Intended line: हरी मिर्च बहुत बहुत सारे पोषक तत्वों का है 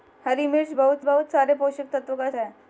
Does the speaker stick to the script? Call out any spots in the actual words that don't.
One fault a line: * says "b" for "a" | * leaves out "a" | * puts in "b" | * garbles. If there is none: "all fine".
all fine